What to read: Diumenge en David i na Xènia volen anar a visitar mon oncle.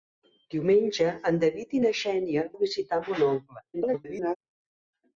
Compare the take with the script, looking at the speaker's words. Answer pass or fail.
fail